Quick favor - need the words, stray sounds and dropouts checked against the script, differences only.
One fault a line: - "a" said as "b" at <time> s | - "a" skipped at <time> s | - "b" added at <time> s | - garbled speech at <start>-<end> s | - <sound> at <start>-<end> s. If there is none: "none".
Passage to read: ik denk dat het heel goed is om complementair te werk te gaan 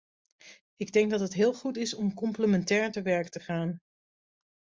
none